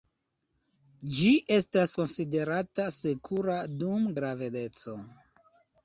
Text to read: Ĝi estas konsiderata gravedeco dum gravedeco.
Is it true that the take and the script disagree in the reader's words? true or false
true